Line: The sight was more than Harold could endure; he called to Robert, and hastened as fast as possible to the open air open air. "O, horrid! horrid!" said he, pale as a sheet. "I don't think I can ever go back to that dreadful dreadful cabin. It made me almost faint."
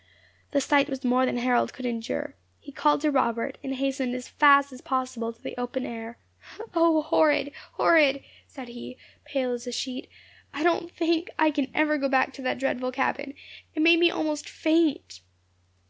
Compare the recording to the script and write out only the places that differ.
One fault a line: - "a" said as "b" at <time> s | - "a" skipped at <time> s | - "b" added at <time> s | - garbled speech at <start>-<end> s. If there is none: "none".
- "open air" skipped at 6.2 s
- "dreadful" skipped at 12.9 s